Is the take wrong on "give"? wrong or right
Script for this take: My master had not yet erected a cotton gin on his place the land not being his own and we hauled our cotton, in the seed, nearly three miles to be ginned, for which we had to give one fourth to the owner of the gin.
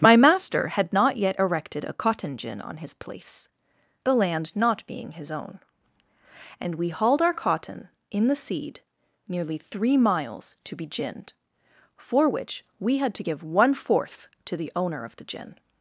right